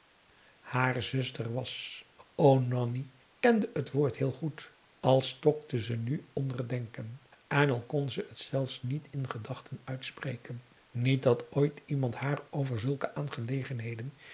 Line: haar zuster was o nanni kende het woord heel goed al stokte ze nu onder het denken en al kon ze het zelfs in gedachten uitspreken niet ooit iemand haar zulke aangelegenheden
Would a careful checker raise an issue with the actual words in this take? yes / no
yes